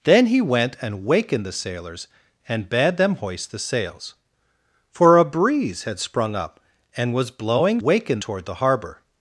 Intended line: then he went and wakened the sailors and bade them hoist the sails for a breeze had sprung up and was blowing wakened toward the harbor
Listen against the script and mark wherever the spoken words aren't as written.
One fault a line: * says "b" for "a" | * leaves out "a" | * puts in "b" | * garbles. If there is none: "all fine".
all fine